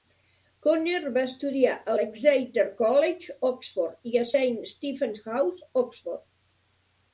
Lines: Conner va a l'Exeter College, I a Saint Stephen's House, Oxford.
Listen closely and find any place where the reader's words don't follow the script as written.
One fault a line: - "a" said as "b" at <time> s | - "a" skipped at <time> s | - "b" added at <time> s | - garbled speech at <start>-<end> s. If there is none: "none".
- "estudiar" added at 1.3 s
- "Oxford" added at 3.5 s